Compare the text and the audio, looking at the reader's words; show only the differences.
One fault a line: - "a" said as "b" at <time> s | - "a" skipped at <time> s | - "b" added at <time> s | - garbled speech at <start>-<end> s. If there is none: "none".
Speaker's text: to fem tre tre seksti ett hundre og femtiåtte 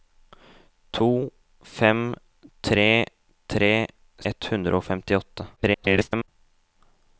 - "seksti" skipped at 3.7 s
- garbled speech at 5.6-6.3 s